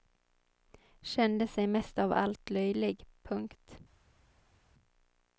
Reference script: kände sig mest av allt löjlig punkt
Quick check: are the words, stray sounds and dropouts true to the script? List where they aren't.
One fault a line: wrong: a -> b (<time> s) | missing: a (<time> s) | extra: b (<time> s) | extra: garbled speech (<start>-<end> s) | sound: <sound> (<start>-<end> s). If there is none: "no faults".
no faults